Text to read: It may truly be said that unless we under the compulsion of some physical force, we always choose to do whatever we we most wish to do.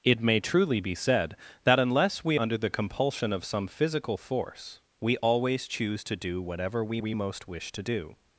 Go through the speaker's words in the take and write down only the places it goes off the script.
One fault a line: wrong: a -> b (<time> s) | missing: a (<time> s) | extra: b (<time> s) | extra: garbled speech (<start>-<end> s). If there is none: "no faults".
no faults